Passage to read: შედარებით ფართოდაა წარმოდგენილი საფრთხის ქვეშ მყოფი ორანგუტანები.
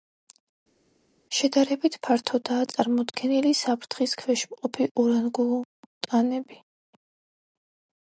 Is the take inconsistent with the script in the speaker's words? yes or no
no